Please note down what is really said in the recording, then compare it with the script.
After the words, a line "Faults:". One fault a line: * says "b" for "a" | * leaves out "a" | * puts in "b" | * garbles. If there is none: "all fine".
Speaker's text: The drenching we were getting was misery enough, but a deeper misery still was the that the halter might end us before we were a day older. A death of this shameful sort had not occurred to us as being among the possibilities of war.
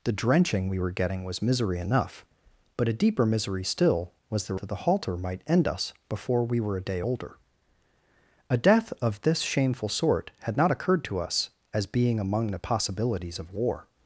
The drenching we were getting was misery enough, but a deeper misery still was the that the halter might end us before we were a day older. A death of this shameful sort had not occurred to us as being among the possibilities of war.
Faults:
all fine